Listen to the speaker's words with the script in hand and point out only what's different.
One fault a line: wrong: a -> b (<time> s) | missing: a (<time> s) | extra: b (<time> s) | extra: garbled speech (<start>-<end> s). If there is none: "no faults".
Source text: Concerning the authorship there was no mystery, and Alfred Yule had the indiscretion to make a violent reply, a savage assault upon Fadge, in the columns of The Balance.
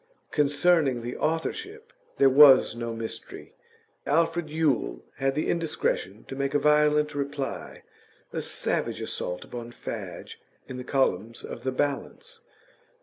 missing: and (3.5 s)